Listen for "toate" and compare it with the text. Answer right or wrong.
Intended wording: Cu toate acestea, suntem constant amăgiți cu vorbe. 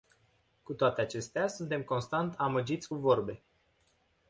right